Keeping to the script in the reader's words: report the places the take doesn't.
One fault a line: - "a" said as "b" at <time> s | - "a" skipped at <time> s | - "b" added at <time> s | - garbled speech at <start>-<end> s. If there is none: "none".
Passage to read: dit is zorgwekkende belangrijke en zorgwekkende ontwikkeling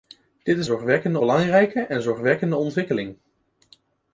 none